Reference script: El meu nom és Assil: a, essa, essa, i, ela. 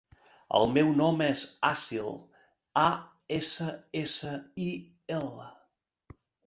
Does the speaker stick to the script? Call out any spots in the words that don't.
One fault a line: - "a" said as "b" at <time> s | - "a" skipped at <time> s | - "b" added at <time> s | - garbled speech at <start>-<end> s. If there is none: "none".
none